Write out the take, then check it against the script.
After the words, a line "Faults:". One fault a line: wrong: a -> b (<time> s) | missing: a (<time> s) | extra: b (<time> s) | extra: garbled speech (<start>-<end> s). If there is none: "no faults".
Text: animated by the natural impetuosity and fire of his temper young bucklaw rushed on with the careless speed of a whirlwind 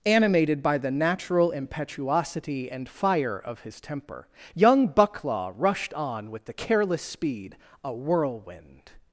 animated by the natural impetuosity and fire of his temper young bucklaw rushed on with the careless speed a whirlwind
Faults:
missing: of (7.6 s)